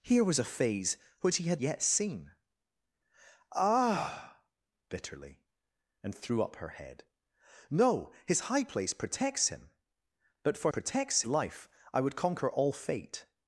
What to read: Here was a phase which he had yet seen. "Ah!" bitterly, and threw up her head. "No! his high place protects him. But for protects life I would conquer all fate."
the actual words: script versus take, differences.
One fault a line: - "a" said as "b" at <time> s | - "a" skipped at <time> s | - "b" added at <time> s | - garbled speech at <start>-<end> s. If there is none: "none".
none